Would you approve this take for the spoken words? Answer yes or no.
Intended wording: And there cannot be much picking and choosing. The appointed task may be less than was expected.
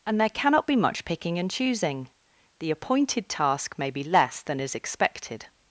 no